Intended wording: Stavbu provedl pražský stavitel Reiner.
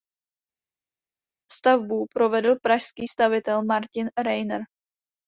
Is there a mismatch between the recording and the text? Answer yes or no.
yes